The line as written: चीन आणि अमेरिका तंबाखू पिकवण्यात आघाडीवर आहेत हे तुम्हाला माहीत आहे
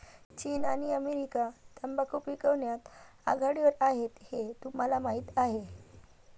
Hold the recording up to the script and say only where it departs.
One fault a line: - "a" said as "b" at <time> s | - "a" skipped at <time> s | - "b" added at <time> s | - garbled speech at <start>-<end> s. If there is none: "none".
none